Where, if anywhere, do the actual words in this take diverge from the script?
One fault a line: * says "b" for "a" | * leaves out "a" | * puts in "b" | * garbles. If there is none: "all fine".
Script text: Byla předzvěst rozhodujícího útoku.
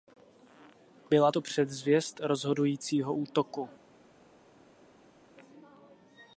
* puts in "to"